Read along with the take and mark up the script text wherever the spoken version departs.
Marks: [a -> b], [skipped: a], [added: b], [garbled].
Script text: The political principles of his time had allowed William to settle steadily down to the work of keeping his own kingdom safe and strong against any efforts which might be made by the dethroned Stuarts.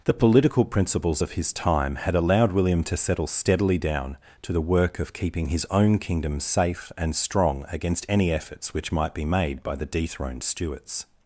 The political principles of his time had allowed William to settle steadily down to the work of keeping his own kingdom safe and strong against any efforts which might be made by the dethroned Stuarts.